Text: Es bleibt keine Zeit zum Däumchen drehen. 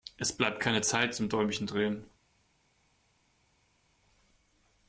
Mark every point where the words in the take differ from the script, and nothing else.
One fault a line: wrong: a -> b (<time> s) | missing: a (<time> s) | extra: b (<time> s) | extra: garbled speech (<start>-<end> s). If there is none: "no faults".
no faults